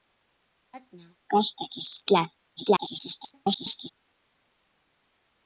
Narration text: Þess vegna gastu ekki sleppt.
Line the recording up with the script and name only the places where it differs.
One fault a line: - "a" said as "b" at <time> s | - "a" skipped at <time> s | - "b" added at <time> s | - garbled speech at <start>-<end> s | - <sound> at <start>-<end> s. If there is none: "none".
- garbled speech at 2.6-3.9 s